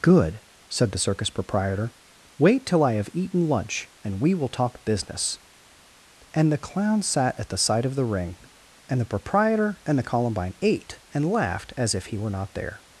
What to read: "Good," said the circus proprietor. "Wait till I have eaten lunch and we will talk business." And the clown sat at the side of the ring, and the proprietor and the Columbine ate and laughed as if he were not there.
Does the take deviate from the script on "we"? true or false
false